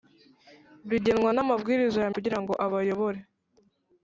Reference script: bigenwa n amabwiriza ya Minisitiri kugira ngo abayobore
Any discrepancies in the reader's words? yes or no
yes